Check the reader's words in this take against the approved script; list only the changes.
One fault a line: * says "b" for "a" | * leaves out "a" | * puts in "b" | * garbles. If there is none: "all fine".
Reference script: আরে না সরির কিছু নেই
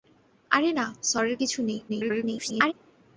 * garbles